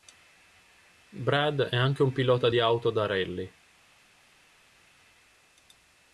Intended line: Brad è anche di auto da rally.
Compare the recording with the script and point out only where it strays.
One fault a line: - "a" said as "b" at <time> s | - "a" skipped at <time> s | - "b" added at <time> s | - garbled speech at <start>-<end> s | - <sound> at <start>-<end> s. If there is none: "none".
- "un pilota" added at 2.0 s